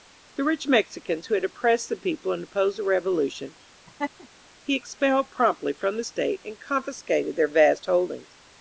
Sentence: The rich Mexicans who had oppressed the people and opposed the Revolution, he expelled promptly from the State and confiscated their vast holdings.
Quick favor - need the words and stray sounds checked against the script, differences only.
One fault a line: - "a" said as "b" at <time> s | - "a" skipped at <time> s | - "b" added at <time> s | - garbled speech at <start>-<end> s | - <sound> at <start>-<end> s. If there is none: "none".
- laugh at 3.9-4.3 s